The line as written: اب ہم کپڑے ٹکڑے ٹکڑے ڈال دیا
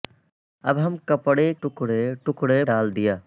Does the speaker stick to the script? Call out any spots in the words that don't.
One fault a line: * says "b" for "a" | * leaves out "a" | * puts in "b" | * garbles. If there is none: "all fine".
all fine